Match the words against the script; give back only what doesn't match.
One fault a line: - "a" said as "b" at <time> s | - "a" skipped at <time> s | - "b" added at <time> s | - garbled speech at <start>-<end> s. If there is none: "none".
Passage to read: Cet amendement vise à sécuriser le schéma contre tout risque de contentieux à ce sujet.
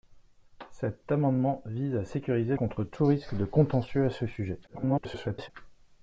- "le schéma" skipped at 2.6 s
- garbled speech at 4.7-5.5 s